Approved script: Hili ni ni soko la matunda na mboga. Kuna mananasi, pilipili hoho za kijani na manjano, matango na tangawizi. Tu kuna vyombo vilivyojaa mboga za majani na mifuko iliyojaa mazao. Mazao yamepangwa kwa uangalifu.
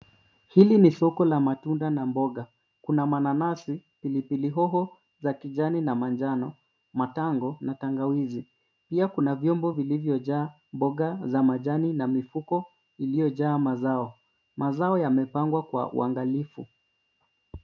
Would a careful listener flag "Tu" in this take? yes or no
yes